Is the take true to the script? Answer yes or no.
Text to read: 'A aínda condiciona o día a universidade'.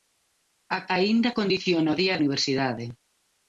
yes